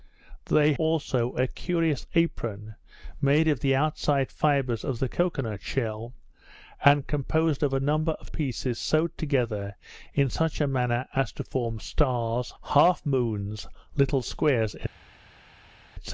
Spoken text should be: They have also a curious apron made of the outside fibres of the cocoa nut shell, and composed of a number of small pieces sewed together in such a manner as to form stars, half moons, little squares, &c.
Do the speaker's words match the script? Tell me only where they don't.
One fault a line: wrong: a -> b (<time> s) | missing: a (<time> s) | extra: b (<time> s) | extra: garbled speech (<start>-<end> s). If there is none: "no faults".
missing: have (0.7 s)
missing: small (8.3 s)